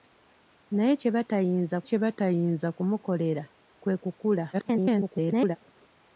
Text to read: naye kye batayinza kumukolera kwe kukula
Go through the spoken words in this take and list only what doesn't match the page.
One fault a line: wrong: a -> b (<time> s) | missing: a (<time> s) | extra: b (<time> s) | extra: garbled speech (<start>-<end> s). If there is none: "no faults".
extra: kye batayinza (1.9 s)
extra: garbled speech (4.5-5.6 s)